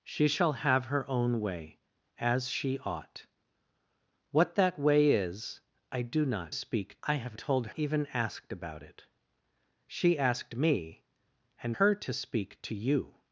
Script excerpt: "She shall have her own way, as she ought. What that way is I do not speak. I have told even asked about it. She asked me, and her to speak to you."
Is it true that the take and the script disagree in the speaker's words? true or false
false